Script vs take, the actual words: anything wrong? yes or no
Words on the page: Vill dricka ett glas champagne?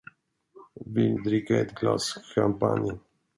no